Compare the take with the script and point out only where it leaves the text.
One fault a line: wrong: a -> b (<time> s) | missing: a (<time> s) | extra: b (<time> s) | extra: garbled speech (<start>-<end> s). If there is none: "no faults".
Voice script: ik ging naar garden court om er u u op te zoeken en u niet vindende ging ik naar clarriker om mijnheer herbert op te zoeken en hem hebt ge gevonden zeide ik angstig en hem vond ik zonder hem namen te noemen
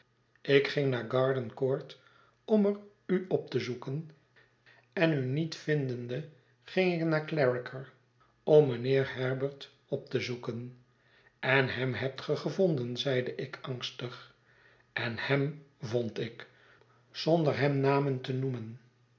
missing: u (3.2 s)